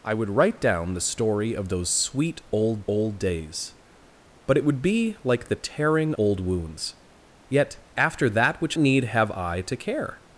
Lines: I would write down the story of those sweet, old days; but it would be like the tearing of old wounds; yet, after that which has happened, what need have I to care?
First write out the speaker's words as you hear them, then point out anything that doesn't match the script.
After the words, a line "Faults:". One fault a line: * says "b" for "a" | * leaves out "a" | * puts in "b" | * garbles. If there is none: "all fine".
I would write down the story of those sweet, old old days; but it would be like the tearing old wounds; yet, after that which need have I to care?
Faults:
* puts in "old"
* leaves out "of"
* leaves out "has happened what"